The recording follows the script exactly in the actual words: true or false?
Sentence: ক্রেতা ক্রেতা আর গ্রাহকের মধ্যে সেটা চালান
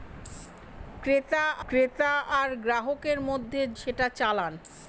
true